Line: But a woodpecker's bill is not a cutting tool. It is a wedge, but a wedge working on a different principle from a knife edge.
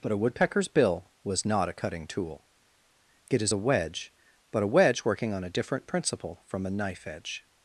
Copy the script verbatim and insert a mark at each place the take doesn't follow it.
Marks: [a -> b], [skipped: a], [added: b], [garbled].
But a woodpecker's bill [is -> was] not a cutting tool. It is a wedge, but a wedge working on a different principle from a knife edge.